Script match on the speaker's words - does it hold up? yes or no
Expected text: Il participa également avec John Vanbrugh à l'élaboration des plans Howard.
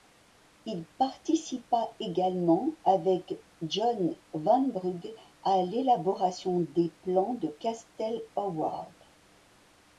no